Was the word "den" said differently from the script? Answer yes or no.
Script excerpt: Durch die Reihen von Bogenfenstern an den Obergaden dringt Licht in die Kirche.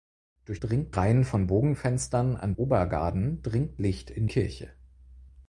yes